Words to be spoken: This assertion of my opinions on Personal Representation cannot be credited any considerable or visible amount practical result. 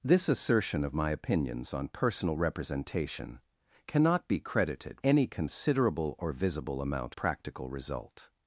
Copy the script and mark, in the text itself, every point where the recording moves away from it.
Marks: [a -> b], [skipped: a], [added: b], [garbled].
This assertion of my opinions on Personal Representation cannot be credited any considerable or visible amount practical result.